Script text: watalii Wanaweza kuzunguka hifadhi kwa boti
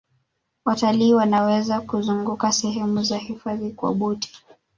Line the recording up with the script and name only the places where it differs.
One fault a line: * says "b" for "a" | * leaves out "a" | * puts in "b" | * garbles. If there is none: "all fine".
* puts in "sehemu za"